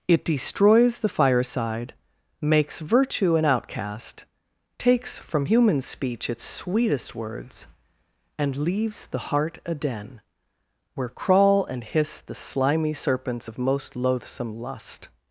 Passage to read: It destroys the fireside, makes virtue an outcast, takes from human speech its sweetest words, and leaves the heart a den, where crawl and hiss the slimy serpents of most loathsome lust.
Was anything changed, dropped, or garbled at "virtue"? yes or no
no